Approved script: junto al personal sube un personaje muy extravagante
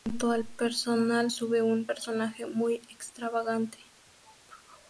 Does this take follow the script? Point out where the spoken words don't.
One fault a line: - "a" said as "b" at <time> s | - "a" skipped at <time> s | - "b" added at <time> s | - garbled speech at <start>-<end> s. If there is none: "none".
none